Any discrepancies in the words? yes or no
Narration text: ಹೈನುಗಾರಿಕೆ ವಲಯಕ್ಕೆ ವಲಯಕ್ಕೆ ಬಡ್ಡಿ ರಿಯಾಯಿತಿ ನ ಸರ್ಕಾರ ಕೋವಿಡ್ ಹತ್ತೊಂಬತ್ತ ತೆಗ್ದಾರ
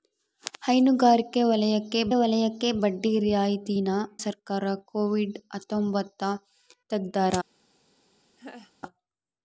no